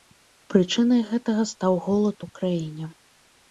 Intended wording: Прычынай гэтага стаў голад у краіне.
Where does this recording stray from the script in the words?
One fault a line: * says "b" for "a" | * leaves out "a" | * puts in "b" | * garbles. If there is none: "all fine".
all fine